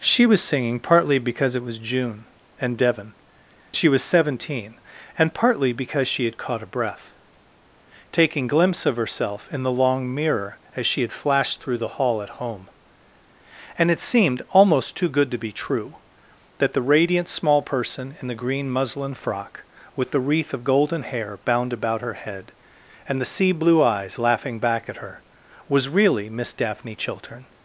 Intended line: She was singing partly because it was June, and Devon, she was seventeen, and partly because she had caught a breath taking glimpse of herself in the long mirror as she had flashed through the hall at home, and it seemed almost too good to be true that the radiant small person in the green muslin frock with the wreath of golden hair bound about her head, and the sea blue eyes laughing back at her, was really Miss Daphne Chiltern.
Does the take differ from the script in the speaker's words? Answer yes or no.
no